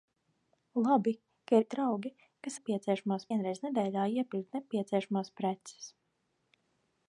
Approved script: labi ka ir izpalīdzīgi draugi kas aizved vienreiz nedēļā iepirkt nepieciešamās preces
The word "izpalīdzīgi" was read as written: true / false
false